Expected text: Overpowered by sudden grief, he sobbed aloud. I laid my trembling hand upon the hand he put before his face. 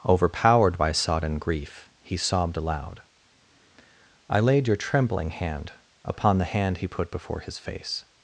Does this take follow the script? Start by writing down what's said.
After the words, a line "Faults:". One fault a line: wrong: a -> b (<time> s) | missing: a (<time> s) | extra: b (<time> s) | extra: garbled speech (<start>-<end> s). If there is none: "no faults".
Overpowered by sodden grief, he sobbed aloud. I laid your trembling hand upon the hand he put before his face.
Faults:
wrong: sudden -> sodden (0.9 s)
wrong: my -> your (4.7 s)